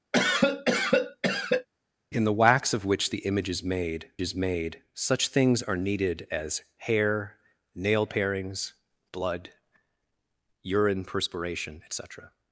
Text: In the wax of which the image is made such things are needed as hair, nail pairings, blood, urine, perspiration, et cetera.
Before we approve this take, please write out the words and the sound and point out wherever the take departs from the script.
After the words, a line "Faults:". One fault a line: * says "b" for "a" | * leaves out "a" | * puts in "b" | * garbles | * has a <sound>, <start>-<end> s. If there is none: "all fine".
In the wax of which the image is made is made such things are needed as hair, nail pairings, blood, urine, perspiration, et cetera.
Faults:
* has a cough, 0.1-1.7 s
* puts in "is made"